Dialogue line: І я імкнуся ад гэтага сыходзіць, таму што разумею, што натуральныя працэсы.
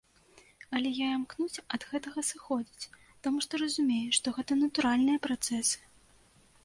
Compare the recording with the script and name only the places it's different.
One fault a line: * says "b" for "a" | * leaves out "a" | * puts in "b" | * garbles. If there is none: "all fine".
* says "Але" for "І"
* puts in "гэта"